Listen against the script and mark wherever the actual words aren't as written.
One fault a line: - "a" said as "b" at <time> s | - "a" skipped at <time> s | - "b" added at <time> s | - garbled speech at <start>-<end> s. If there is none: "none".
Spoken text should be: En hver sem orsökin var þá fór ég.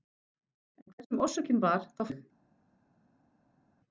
- "fór" skipped at 2.0 s